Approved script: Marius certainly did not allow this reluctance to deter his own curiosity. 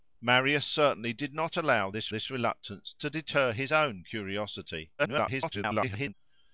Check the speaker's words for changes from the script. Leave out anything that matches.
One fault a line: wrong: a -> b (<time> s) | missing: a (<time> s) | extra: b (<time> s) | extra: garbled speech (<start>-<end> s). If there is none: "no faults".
extra: this (2.1 s)
extra: garbled speech (5.0-6.1 s)